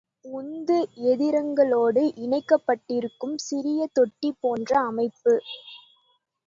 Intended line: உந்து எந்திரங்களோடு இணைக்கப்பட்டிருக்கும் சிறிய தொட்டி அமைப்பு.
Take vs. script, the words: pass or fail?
fail